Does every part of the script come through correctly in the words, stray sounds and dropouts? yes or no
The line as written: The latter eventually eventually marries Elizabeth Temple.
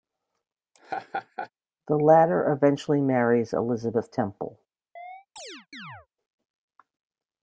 no